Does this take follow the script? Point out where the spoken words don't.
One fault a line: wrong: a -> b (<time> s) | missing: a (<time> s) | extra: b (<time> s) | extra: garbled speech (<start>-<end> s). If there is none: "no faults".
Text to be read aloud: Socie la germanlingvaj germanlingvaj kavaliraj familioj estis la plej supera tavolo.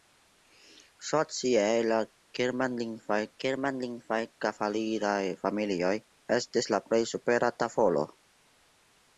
no faults